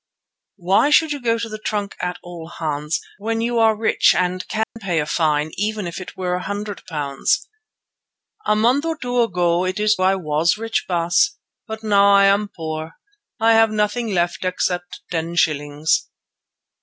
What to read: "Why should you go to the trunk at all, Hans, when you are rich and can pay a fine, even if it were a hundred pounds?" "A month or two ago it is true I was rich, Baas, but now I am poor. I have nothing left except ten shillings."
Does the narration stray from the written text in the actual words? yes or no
yes